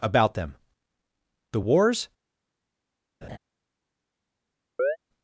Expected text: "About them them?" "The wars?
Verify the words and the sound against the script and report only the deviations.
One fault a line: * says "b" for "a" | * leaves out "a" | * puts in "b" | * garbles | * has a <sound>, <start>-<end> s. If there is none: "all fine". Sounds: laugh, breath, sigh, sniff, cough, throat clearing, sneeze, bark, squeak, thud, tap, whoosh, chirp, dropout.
* leaves out "them"
* has a laugh, 3.2-3.4 s
* has a chirp, 4.8-5.0 s